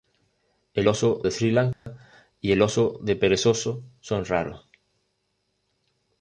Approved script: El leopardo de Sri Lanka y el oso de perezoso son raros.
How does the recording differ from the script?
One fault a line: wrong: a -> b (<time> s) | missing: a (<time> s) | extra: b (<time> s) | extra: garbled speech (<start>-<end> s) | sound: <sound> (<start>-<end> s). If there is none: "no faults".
wrong: leopardo -> oso (0.9 s)
sound: dropout (1.7-1.9 s)